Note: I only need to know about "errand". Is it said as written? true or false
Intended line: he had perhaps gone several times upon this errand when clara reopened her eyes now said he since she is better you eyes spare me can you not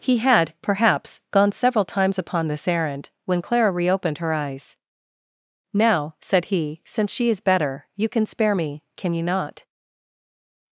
true